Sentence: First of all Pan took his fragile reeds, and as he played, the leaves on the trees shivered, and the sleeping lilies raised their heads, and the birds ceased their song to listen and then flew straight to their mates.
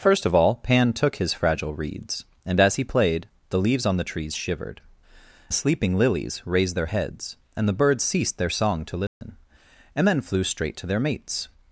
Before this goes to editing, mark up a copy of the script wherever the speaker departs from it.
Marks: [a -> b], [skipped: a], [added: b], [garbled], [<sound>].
First of all Pan took his fragile reeds, and as he played, the leaves on the trees shivered, [skipped: and] the sleeping lilies raised their heads, and the birds ceased their song to listen [dropout] and then flew straight to their mates.